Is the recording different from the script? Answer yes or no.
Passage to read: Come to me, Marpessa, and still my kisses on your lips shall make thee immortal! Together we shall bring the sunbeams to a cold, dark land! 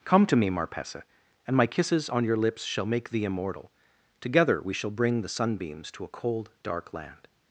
yes